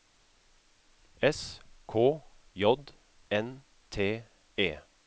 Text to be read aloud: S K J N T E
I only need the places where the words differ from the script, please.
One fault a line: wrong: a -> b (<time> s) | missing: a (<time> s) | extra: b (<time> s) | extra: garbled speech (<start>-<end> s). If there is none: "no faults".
no faults